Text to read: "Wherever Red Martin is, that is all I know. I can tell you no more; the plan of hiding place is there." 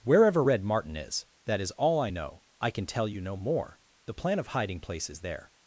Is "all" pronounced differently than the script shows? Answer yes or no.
no